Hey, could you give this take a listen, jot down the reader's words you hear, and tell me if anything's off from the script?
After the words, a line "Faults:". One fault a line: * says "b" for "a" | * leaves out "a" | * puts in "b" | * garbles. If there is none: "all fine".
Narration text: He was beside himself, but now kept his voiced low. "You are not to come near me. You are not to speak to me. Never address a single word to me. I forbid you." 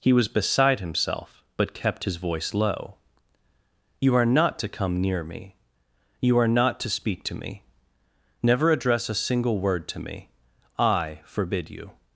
He was beside himself, but kept his voice low. "You are not to come near me. You are not to speak to me. Never address a single word to me. I forbid you."
Faults:
* leaves out "now"
* says "voice" for "voiced"